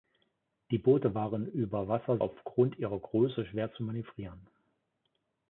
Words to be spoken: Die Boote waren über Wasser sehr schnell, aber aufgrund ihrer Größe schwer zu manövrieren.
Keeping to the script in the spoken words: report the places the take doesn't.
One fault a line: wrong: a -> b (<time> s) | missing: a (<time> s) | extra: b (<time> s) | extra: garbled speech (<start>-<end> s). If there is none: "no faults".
missing: sehr schnell aber (2.2 s)